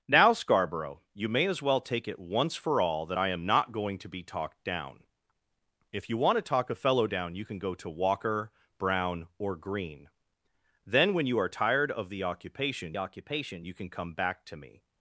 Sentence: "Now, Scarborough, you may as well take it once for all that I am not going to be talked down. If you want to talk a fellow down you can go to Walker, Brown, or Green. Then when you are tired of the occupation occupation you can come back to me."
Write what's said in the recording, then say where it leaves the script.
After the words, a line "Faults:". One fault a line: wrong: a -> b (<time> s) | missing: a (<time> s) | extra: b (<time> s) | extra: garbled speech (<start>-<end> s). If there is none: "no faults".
"Now, Scarborough, you may as well take it once for all that I am not going to be talked down. If you want to talk a fellow down you can go to Walker, Brown, or Green. Then when you are tired of the occupation occupation you can come back to me."
Faults:
no faults